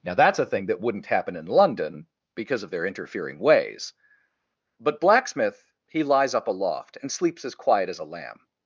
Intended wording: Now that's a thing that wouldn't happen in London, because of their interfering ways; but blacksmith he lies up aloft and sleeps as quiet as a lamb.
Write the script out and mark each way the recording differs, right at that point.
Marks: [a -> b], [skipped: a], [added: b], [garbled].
Now that's a thing that wouldn't happen in London, because of their interfering ways; but blacksmith he lies up aloft and sleeps as quiet as a lamb.